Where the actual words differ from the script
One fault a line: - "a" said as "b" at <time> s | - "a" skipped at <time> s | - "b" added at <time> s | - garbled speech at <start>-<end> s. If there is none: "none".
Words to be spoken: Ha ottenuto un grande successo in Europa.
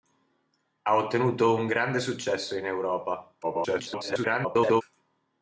- garbled speech at 3.4-4.8 s